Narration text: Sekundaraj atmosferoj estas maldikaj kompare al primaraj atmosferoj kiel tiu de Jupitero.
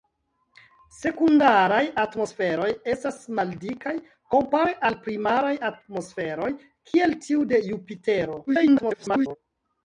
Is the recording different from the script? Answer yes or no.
yes